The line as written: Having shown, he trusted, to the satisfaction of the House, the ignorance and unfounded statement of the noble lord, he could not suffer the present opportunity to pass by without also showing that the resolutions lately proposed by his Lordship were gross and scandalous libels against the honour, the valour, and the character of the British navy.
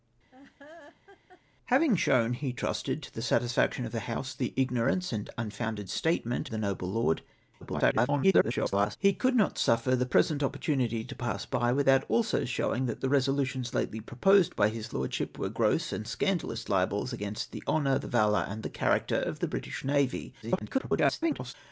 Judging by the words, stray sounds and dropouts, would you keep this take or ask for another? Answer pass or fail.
fail